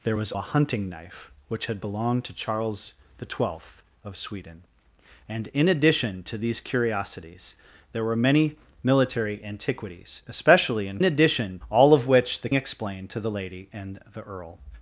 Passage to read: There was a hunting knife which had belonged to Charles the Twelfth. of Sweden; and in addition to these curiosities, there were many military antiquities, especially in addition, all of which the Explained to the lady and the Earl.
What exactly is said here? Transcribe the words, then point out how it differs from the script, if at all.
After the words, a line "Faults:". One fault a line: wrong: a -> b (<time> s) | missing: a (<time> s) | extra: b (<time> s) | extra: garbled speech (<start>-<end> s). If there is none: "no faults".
There was a hunting knife which had belonged to Charles the Twelfth. of Sweden; and in addition to these curiosities, there were many military antiquities, especially in addition, all of which the Explained to the lady and the Earl.
Faults:
no faults